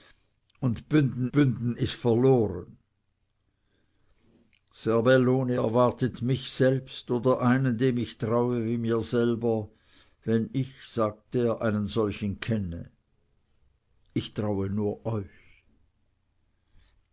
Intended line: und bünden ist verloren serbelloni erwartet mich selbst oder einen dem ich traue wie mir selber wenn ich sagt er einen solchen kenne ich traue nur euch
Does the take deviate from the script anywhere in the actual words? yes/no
yes